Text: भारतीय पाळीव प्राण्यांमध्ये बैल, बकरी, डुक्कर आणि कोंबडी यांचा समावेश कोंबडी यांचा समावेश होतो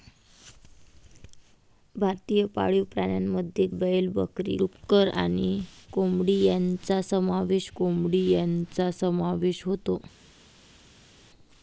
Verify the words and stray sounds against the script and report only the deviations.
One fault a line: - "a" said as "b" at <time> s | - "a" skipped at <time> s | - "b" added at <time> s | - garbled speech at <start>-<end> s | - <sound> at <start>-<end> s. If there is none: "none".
none